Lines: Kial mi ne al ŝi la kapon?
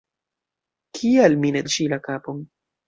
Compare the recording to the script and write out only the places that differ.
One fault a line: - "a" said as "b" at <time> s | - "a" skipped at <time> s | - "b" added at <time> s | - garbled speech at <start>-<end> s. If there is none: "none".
none